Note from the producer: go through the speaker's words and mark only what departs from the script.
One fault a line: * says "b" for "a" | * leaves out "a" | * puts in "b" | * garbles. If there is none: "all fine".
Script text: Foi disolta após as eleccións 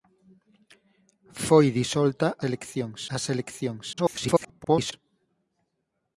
* says "eleccións" for "após"
* garbles